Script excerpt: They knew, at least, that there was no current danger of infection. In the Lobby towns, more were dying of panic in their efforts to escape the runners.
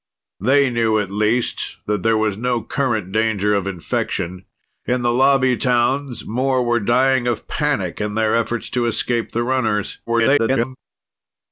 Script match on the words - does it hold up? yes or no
no